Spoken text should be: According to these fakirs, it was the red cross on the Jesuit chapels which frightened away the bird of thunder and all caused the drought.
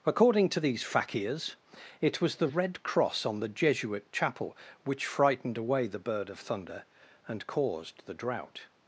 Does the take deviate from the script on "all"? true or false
true